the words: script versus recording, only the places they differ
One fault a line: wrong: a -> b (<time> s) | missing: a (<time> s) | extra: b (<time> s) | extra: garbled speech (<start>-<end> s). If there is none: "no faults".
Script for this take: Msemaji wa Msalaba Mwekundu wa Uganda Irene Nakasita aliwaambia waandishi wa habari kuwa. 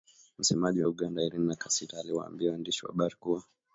missing: Msalaba Mwekundu (0.9 s)